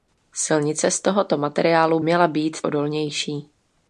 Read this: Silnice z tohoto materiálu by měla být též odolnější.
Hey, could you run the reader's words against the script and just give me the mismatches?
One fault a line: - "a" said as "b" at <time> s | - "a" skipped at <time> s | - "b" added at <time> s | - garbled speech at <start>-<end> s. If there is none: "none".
- "by" skipped at 2.0 s
- "též" skipped at 2.6 s